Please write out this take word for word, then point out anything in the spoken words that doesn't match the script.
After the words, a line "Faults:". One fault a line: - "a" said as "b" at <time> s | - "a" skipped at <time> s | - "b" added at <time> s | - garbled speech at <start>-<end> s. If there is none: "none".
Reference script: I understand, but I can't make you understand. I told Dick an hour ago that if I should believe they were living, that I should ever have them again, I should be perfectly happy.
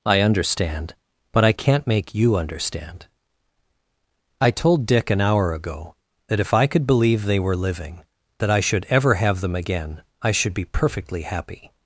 I understand, but I can't make you understand. I told Dick an hour ago that if I could believe they were living, that I should ever have them again, I should be perfectly happy.
Faults:
- "should" said as "could" at 6.7 s